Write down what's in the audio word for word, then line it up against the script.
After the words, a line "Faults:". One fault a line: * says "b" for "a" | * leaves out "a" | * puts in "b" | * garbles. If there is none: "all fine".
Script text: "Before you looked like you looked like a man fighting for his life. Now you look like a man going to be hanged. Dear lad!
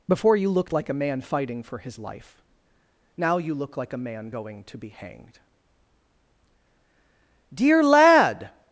"Before you looked like a man fighting for his life. Now you look like a man going to be hanged. Dear lad!
Faults:
* leaves out "you looked like"